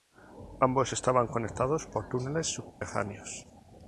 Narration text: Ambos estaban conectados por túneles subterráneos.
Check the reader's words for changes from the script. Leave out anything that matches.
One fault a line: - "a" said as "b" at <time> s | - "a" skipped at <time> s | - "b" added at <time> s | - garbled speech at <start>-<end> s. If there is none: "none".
none